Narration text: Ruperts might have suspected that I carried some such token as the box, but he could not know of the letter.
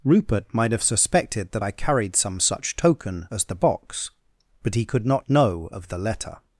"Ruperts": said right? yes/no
no